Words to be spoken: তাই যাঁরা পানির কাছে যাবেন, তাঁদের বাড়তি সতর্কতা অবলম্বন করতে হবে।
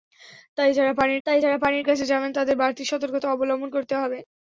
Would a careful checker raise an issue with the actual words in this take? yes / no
yes